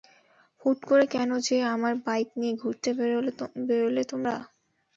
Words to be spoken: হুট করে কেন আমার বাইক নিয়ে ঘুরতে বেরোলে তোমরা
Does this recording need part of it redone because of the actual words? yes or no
yes